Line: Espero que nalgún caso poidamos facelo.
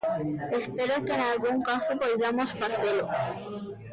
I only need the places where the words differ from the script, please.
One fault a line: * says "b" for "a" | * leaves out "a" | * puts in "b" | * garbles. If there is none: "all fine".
all fine